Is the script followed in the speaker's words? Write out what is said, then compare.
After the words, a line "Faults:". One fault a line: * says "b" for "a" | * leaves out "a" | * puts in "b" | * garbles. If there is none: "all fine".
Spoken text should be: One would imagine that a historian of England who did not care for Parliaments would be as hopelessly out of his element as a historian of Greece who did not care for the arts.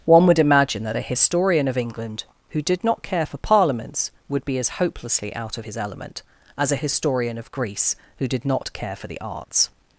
One would imagine that a historian of England who did not care for Parliaments would be as hopelessly out of his element as a historian of Greece who did not care for the arts.
Faults:
all fine